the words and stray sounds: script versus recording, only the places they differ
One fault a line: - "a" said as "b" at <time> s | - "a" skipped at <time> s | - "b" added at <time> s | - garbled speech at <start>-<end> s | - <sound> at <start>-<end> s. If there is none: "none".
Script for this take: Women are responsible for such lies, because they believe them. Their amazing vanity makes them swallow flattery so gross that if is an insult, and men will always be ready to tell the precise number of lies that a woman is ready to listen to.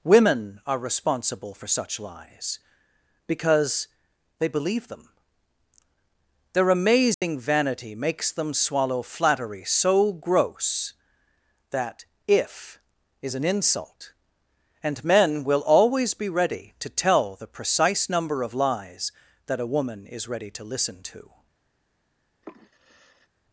- dropout at 7.1-7.2 s
- sigh at 22.4-23.3 s